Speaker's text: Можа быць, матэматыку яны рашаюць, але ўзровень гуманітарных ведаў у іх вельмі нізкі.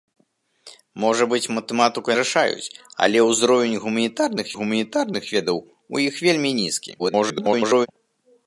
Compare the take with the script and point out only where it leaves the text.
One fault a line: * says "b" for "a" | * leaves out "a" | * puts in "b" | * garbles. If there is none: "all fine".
* leaves out "яны"
* puts in "гуманітарных"
* garbles